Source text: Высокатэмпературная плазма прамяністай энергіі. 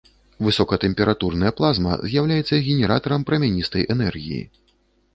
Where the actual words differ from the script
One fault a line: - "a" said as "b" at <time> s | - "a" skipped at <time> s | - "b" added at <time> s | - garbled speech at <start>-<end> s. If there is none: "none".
- "з'яўляецца генератарам" added at 2.1 s